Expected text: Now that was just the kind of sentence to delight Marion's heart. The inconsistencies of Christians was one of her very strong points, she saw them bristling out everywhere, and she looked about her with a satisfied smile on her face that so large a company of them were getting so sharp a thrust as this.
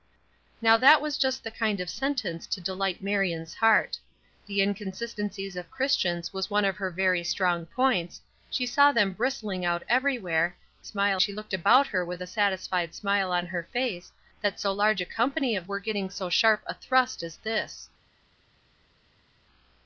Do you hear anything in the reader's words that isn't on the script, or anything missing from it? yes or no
yes